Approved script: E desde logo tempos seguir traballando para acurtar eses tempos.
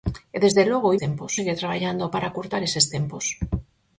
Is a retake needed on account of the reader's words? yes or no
no